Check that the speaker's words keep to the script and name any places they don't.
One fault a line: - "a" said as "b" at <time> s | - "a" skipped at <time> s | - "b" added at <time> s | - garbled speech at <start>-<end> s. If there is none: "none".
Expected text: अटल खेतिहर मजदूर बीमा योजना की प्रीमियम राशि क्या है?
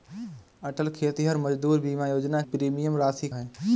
- "की" skipped at 2.4 s
- "क्या" skipped at 3.3 s